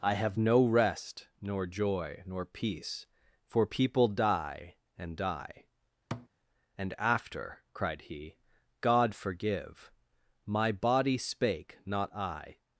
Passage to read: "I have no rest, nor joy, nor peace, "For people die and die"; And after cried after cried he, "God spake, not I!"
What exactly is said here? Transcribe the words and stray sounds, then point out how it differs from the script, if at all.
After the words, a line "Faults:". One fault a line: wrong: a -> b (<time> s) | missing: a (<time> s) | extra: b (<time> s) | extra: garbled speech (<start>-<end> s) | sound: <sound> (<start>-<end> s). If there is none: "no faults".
"I have no rest, nor joy, nor peace, "For people die and die"; And after cried he, "God forgive! "My body spake, not I!"
Faults:
sound: thud (6.1-6.3 s)
wrong: after cried he God -> he God forgive My body (8.0 s)